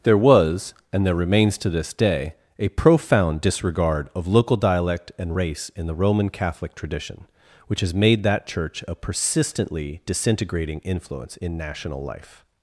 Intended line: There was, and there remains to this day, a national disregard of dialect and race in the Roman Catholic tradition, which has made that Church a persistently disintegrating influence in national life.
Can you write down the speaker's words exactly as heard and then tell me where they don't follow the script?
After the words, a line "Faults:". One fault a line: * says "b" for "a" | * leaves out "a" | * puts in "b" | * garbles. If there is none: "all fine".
There was, and there remains to this day, a profound disregard of local dialect and race in the Roman Catholic tradition, which has made that Church a persistently disintegrating influence in national life.
Faults:
* says "profound" for "national"
* puts in "local"